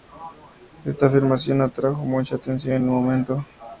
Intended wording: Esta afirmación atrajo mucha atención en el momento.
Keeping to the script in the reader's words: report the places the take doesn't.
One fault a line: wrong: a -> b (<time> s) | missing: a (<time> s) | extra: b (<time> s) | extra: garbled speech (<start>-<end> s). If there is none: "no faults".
no faults